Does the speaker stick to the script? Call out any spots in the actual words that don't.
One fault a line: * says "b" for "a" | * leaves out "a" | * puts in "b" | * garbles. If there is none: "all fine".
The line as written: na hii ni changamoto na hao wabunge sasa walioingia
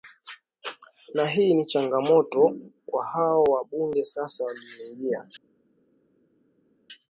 * says "kwa" for "na"